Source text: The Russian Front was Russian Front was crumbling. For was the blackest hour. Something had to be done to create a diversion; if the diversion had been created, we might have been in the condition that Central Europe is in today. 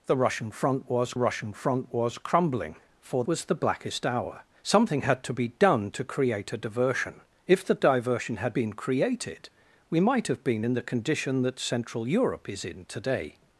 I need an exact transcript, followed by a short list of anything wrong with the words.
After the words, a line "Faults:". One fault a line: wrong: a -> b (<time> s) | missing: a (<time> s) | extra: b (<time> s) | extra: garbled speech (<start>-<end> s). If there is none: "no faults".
The Russian Front was Russian Front was crumbling. For was the blackest hour. Something had to be done to create a diversion; if the diversion had been created, we might have been in the condition that Central Europe is in today.
Faults:
no faults